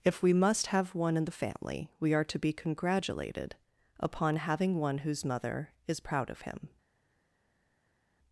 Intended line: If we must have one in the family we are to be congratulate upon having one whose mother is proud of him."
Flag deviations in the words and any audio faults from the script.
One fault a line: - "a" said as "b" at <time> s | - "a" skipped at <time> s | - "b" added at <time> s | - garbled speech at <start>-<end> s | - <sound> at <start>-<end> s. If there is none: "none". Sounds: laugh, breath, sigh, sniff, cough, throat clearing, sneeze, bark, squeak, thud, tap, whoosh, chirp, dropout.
- "congratulate" said as "congratulated" at 2.5 s